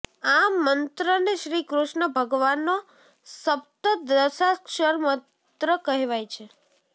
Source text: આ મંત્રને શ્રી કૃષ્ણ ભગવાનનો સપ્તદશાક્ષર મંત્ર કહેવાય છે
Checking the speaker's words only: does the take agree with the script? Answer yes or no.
yes